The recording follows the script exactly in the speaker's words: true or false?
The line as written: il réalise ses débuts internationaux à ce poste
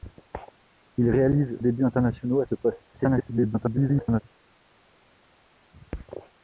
false